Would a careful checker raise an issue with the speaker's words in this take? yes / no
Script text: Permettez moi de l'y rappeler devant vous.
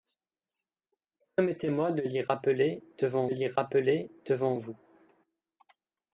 yes